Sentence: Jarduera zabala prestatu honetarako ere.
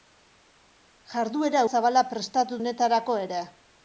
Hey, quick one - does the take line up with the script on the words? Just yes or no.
yes